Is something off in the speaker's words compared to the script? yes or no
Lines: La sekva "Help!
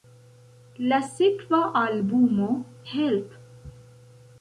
yes